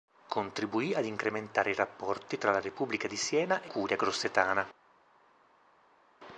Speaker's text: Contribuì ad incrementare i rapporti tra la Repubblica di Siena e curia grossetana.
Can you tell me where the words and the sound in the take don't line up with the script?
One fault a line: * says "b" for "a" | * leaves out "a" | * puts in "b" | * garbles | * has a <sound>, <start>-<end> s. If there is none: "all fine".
all fine